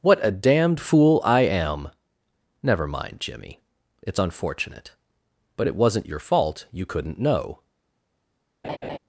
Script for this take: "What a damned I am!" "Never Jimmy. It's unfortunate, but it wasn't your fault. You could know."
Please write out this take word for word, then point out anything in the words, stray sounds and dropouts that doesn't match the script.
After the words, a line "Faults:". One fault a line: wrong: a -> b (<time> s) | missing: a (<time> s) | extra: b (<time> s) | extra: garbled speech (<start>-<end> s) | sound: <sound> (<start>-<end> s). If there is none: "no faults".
"What a damned fool I am!" "Never mind, Jimmy. It's unfortunate, but it wasn't your fault. You couldn't know."
Faults:
extra: fool (0.8 s)
extra: mind (2.9 s)
wrong: could -> couldn't (6.9 s)
sound: laugh (8.6-9.0 s)